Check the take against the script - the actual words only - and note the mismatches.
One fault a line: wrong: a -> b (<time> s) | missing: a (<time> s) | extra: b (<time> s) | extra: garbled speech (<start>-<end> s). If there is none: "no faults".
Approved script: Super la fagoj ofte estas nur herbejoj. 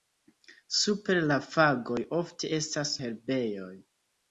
missing: nur (2.9 s)